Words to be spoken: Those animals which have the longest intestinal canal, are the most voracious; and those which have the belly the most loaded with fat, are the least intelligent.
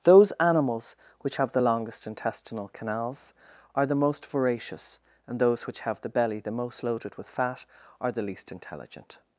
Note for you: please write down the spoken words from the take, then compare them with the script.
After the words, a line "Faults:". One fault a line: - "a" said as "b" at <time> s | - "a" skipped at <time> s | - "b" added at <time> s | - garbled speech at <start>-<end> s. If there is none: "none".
Those animals which have the longest intestinal canals, are the most voracious; and those which have the belly the most loaded with fat, are the least intelligent.
Faults:
- "canal" said as "canals" at 2.7 s